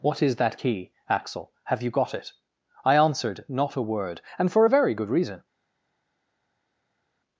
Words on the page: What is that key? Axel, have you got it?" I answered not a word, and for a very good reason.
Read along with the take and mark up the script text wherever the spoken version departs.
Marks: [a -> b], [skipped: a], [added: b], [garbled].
What is that key? Axel, have you got it?" I answered not a word, and for a very good reason.